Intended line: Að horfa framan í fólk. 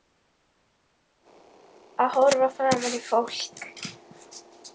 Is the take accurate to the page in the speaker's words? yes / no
yes